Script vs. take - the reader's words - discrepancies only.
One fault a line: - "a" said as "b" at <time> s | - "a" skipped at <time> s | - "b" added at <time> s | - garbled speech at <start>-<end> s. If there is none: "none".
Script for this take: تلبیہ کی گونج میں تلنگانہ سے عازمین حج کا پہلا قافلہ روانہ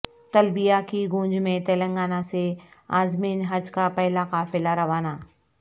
none